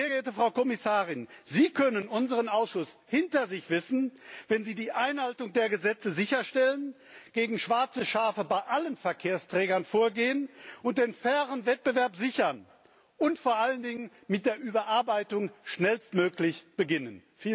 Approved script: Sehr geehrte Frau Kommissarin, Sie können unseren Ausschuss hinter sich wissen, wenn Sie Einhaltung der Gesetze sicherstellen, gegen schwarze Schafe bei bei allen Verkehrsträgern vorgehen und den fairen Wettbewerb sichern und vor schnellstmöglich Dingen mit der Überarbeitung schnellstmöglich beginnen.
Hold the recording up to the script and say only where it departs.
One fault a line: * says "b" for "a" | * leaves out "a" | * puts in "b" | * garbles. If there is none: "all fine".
* puts in "die"
* leaves out "bei"
* says "allen" for "schnellstmöglich"